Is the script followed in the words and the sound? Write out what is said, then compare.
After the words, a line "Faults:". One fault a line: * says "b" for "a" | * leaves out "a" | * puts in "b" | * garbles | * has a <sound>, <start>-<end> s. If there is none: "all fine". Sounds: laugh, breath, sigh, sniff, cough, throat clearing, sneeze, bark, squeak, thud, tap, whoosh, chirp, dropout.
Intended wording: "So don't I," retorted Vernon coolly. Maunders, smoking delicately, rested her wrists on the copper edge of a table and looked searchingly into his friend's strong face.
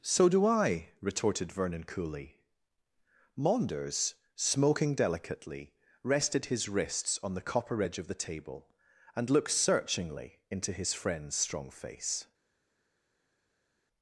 "So do I," retorted Vernon coolly. Maunders, smoking delicately, rested his wrists on the copper edge of the table and looked searchingly into his friend's strong face.
Faults:
* says "do" for "don't"
* says "his" for "her"
* says "the" for "a"